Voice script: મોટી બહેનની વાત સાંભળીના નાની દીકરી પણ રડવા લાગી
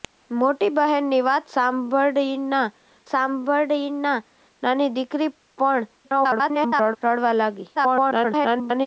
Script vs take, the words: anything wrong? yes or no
yes